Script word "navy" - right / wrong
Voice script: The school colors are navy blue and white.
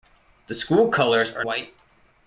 wrong